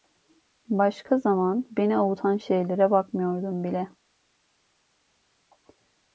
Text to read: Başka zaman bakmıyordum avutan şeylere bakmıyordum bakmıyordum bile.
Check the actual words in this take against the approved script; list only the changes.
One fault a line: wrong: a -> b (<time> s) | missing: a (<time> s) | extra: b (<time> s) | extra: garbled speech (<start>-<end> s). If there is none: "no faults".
wrong: bakmıyordum -> beni (1.7 s)
missing: bakmıyordum (3.6 s)